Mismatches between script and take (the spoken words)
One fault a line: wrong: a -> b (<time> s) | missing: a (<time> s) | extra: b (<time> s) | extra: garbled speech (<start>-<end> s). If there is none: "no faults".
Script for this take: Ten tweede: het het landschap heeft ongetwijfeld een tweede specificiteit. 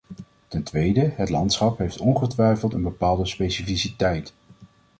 missing: het (1.3 s)
wrong: tweede -> bepaalde (2.8 s)